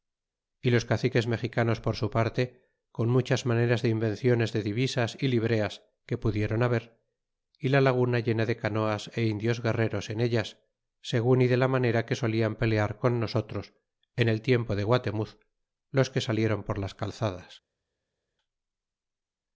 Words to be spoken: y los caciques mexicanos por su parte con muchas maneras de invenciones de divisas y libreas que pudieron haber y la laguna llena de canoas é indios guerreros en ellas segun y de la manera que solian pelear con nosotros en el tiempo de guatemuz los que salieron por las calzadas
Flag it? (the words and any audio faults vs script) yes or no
no